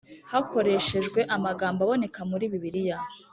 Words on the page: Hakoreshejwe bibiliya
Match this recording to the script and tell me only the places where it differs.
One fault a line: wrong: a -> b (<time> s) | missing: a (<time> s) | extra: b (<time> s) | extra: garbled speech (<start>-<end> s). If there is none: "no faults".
extra: amagambo aboneka muri (1.4 s)